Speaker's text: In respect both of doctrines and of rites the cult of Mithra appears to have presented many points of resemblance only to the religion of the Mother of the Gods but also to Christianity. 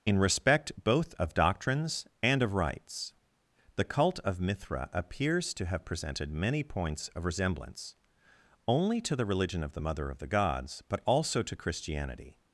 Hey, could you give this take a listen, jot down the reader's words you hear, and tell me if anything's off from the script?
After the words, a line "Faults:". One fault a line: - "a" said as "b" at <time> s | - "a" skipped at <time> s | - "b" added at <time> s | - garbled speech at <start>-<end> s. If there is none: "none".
In respect both of doctrines and of rites the cult of Mithra appears to have presented many points of resemblance only to the religion of the Mother of the Gods but also to Christianity.
Faults:
none